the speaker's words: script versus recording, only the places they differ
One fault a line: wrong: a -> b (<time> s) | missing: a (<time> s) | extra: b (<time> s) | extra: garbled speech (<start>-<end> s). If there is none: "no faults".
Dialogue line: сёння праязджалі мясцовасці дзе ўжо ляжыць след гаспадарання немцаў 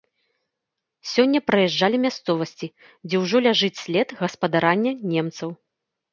no faults